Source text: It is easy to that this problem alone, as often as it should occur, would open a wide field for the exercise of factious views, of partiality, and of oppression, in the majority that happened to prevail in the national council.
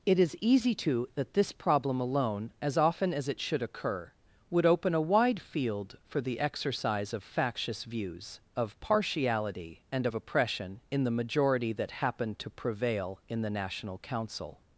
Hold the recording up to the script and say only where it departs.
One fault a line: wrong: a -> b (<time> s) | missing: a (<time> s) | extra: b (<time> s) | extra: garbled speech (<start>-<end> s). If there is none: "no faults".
no faults